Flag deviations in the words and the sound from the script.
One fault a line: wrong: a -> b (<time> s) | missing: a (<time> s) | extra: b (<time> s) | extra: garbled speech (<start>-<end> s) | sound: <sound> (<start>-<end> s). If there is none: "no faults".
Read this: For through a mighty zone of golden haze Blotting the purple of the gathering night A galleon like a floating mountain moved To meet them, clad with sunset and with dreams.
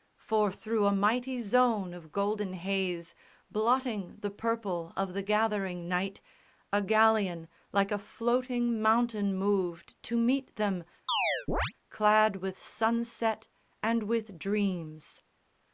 sound: chirp (11.1-11.7 s)